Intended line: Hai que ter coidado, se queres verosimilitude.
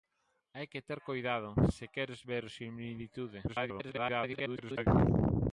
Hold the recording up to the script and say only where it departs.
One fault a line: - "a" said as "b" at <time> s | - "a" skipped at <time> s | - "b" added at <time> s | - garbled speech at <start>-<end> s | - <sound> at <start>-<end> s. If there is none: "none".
- garbled speech at 3.5-4.9 s